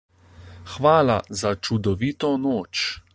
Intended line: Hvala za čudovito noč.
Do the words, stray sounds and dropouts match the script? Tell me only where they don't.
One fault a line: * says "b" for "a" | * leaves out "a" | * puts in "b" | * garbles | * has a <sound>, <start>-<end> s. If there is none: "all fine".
all fine